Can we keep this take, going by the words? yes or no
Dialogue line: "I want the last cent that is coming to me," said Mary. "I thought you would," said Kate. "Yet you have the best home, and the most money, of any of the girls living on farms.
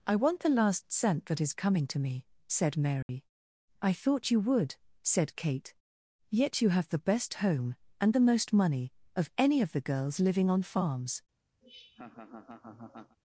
yes